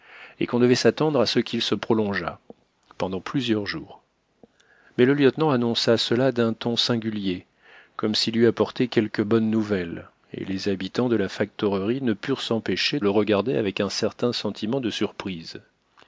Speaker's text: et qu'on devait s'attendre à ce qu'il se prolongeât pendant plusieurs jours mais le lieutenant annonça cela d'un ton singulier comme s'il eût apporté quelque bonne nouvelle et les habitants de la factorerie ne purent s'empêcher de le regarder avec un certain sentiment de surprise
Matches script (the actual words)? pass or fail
fail